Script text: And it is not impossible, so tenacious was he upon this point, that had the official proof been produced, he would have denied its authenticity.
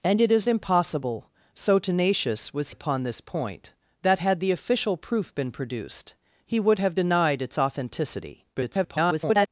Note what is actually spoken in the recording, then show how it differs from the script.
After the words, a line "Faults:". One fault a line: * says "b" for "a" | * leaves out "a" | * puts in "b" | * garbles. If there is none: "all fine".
And it is impossible, so tenacious was upon this point, that had the official proof been produced, he would have denied its authenticity. [garbled]
Faults:
* leaves out "not"
* leaves out "he"
* garbles